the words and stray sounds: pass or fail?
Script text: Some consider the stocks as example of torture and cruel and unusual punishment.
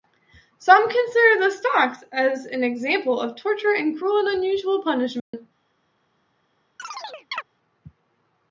fail